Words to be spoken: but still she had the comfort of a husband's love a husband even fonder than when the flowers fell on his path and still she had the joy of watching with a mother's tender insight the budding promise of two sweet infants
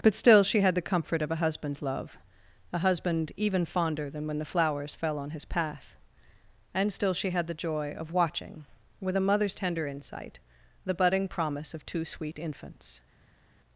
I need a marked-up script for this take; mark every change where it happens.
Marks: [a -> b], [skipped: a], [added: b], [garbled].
but still she had the comfort of a husband's love a husband even fonder than when the flowers fell on his path and still she had the joy of watching with a mother's tender insight the budding promise of two sweet infants